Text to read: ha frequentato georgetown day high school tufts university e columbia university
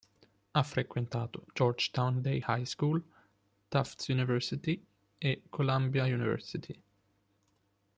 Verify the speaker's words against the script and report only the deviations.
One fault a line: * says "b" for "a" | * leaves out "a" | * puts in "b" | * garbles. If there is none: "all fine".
all fine